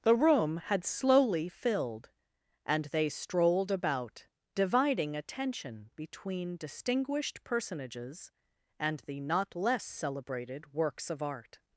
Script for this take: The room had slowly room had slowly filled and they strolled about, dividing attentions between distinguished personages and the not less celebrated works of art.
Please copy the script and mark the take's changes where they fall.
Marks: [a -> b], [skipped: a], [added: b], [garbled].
The room had slowly [skipped: room had slowly] filled and they strolled about, dividing [attentions -> attention] between distinguished personages and the not less celebrated works of art.